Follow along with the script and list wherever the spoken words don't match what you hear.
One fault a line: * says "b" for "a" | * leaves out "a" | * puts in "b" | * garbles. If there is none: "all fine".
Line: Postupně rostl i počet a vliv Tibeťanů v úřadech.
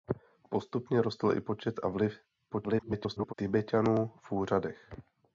* garbles